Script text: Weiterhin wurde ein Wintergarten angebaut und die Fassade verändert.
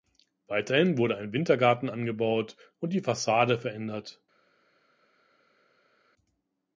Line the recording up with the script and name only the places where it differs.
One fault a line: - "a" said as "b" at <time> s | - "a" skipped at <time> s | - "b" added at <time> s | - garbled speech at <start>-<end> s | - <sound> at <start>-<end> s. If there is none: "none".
none